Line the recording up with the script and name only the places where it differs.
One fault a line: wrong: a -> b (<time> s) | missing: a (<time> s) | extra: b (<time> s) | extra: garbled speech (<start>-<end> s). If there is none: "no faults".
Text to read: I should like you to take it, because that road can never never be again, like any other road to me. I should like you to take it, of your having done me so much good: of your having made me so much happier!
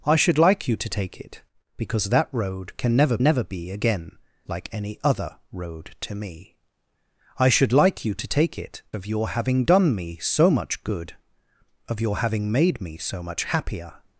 no faults